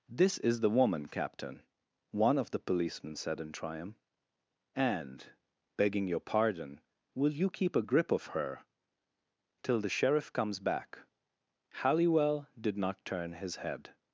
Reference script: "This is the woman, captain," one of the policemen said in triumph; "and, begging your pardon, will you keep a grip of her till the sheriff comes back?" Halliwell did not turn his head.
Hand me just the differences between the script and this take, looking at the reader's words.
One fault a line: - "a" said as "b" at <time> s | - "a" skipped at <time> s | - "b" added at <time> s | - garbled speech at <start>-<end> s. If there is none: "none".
none